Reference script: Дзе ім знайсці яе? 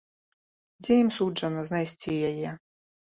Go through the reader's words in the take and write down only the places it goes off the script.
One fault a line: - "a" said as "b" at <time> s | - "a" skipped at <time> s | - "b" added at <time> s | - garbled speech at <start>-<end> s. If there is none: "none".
- "суджана" added at 1.1 s